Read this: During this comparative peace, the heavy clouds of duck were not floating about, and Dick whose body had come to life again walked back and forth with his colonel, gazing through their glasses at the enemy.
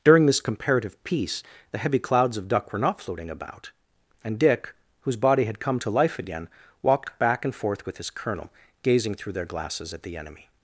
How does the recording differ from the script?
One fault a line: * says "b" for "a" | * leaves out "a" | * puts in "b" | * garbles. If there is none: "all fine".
all fine